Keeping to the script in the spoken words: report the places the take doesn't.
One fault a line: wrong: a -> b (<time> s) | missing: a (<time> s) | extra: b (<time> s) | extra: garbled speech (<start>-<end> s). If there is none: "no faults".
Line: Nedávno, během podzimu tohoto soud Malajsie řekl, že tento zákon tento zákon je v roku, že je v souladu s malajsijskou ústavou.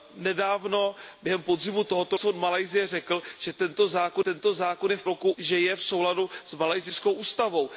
no faults